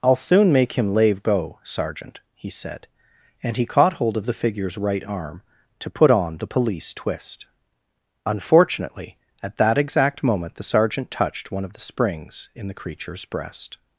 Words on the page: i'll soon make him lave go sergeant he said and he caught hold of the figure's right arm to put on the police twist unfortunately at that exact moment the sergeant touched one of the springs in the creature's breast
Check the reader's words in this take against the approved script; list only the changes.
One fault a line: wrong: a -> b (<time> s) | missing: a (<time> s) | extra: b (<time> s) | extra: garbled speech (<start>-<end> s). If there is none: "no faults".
no faults